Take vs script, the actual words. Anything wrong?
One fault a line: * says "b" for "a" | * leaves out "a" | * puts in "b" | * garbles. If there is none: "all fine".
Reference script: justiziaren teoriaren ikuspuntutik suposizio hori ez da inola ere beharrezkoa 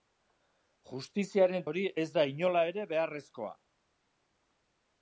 * leaves out "teoriaren ikuspuntutik suposizio"